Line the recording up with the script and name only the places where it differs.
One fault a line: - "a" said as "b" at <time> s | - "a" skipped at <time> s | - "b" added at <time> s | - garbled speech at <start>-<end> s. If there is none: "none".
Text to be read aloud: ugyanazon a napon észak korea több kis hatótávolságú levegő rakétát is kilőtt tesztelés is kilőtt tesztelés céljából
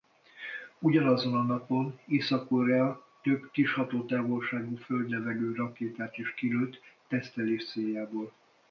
- "föld" added at 4.7 s
- "is kilőtt tesztelés" skipped at 7.7 s